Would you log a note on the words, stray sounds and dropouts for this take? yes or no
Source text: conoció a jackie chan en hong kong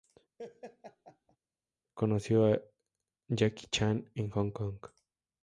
yes